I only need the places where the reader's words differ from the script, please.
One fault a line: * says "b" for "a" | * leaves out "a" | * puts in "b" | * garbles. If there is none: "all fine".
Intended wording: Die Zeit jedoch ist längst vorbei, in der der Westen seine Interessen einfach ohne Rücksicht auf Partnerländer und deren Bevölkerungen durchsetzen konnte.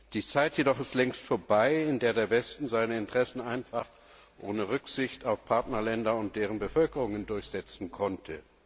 all fine